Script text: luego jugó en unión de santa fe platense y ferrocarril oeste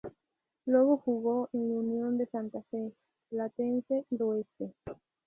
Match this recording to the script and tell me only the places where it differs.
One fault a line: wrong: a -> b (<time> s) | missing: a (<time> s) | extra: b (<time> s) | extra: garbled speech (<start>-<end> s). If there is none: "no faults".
missing: ferrocarril (4.2 s)